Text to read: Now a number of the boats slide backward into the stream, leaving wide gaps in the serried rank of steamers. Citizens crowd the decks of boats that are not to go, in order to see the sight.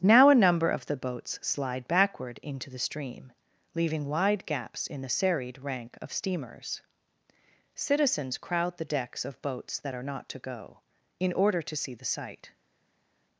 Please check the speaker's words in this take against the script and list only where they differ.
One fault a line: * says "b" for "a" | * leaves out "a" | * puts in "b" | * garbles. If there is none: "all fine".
all fine